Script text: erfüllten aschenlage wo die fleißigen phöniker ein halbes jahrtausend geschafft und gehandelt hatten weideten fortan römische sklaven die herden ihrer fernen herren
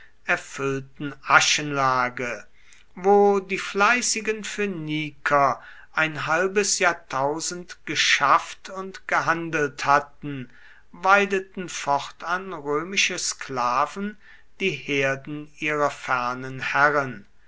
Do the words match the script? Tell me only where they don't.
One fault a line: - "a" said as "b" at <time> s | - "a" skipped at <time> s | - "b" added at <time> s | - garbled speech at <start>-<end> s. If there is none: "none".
none